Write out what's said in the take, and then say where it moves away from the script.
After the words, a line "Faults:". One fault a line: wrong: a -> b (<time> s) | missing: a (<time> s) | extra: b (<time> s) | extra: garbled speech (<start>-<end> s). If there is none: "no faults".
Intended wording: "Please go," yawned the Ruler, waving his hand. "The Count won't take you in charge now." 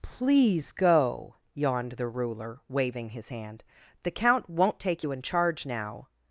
"Please go," yawned the Ruler, waving his hand. "The Count won't take you in charge now."
Faults:
no faults